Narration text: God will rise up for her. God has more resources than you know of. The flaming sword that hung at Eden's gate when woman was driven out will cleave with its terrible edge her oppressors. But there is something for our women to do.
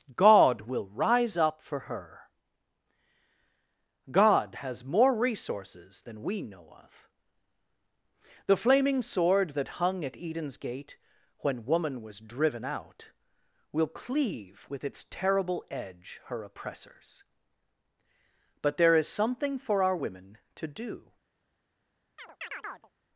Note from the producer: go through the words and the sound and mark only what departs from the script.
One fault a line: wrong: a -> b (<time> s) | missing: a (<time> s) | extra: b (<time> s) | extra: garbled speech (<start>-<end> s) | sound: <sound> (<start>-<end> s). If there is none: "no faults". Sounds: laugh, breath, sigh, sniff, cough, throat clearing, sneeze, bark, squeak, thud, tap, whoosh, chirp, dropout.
wrong: you -> we (6.2 s)
sound: chirp (22.2-22.9 s)